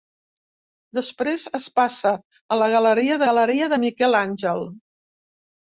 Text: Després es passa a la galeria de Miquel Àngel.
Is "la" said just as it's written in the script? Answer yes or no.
yes